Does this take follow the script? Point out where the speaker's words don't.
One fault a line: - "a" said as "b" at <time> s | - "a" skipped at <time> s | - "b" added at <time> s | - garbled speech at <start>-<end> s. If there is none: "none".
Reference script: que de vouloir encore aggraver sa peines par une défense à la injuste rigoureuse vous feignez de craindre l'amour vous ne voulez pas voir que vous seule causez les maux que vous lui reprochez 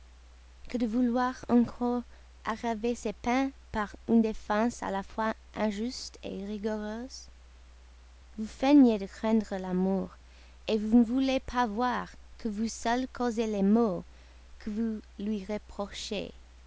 - "sa" said as "ses" at 3.0 s
- "fois" added at 5.0 s